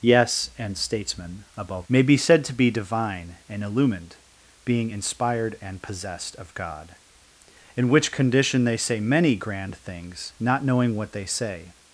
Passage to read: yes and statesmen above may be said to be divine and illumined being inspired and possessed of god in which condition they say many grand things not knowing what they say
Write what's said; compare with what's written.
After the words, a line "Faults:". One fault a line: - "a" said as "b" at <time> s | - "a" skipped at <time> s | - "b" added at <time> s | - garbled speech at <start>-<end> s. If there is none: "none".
yes and statesmen above may be said to be divine and illumined being inspired and possessed of god in which condition they say many grand things not knowing what they say
Faults:
none